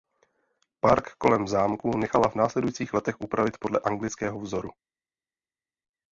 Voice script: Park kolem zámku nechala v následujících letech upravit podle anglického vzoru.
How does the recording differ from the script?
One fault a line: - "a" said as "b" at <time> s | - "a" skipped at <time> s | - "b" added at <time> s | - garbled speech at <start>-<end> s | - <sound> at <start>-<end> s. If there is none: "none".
- "v" skipped at 2.3 s